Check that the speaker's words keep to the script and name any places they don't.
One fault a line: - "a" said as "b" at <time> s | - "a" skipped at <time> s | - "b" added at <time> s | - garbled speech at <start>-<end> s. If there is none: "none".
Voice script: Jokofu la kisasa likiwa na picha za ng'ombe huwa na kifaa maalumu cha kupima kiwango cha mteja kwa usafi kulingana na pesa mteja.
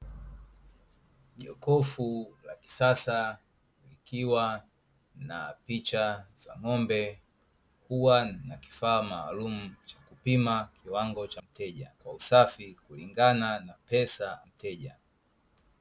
none